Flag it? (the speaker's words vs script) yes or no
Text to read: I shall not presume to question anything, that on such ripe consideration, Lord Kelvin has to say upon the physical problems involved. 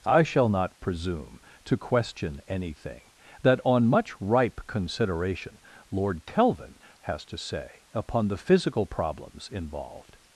yes